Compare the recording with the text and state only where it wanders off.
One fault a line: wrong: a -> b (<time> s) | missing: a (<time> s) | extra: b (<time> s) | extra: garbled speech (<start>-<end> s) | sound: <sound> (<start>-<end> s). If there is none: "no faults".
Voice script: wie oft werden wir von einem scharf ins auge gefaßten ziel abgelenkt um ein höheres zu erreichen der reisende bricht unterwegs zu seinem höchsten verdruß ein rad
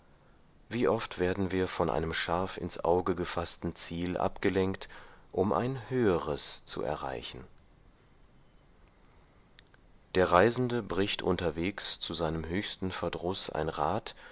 no faults